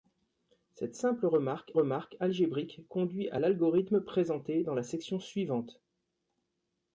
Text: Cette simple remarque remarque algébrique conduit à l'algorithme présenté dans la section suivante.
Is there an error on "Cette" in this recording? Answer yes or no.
no